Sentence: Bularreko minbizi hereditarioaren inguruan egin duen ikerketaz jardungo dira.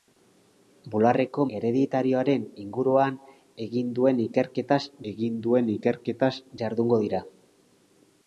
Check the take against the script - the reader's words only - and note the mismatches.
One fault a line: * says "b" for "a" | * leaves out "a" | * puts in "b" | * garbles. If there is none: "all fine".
* leaves out "minbizi"
* puts in "egin duen ikerketaz"